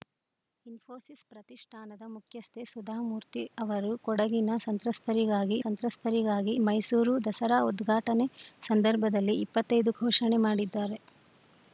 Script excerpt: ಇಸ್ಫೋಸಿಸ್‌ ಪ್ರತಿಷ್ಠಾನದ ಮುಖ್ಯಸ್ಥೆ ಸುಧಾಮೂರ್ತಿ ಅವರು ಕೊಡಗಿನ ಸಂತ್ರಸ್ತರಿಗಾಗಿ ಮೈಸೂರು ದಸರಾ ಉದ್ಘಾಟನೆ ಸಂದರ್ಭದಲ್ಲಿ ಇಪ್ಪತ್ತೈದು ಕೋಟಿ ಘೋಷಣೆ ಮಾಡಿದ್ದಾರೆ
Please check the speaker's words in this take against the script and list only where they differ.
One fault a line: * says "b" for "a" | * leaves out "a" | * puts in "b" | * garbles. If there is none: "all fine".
* puts in "ಸಂತ್ರಸ್ತರಿಗಾಗಿ"
* leaves out "ಕೋಟಿ"